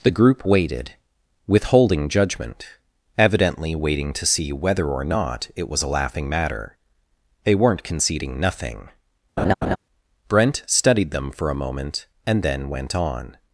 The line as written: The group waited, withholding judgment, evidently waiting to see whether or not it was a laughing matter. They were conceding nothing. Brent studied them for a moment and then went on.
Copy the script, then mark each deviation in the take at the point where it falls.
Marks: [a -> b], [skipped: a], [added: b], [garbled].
The group waited, withholding judgment, evidently waiting to see whether or not it was a laughing matter. They [were -> weren't] conceding nothing. Brent studied them for a moment and then went on.